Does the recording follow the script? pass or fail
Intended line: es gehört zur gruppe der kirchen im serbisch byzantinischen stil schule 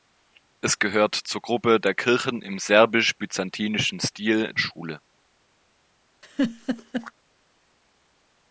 pass